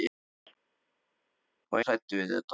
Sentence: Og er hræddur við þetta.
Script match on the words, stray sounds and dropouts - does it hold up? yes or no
yes